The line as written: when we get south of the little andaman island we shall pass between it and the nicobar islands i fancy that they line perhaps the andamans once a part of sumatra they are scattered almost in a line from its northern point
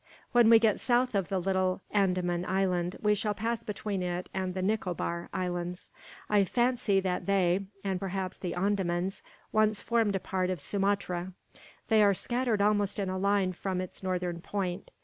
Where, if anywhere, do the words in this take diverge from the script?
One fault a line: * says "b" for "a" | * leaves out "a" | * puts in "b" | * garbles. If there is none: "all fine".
* says "and" for "line"
* puts in "formed"